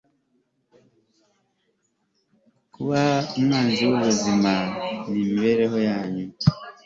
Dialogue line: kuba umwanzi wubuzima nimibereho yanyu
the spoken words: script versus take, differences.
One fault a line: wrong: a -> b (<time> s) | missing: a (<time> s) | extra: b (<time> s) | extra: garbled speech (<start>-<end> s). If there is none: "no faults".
no faults